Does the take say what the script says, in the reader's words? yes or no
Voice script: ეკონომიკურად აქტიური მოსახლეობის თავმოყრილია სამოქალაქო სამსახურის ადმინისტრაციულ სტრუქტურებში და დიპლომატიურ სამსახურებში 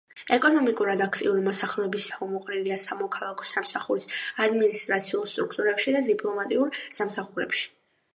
yes